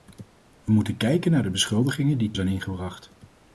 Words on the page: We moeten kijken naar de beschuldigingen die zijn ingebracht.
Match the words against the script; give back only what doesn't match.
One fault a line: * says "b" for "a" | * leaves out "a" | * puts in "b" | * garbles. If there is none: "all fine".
all fine